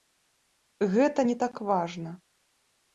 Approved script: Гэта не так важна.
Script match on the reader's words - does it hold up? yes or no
yes